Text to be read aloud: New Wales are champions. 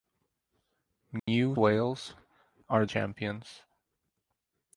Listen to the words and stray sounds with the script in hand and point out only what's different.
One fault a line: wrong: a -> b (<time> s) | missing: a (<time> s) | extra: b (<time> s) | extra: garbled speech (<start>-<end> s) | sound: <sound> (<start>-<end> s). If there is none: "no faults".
sound: dropout (1.2-1.3 s)